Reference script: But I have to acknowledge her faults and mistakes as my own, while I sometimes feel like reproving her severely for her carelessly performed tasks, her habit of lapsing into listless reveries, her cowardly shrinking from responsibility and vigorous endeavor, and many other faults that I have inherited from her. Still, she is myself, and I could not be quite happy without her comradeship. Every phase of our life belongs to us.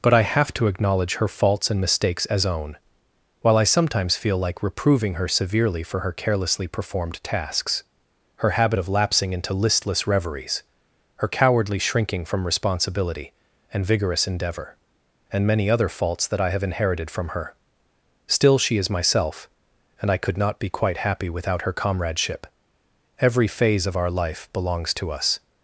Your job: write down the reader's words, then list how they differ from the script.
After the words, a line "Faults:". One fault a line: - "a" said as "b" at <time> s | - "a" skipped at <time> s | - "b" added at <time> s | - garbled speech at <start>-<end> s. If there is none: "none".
But I have to acknowledge her faults and mistakes as own, while I sometimes feel like reproving her severely for her carelessly performed tasks, her habit of lapsing into listless reveries, her cowardly shrinking from responsibility and vigorous endeavor, and many other faults that I have inherited from her. Still, she is myself, and I could not be quite happy without her comradeship. Every phase of our life belongs to us.
Faults:
- "my" skipped at 2.5 s